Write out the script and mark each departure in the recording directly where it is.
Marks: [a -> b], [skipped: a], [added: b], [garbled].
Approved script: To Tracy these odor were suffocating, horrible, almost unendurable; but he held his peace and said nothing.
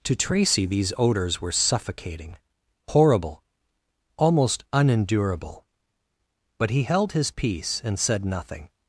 To Tracy these [odor -> odors] were suffocating, horrible, almost unendurable; but he held his peace and said nothing.